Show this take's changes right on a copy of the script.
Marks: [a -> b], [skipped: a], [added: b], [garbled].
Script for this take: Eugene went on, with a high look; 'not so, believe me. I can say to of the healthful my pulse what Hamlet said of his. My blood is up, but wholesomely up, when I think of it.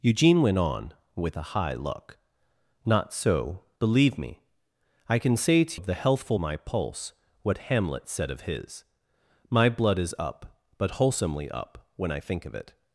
Eugene went on, with a high look; 'not so, believe me. I can say to of the healthful my pulse what Hamlet said of his. My blood is up, but wholesomely up, when I think of it.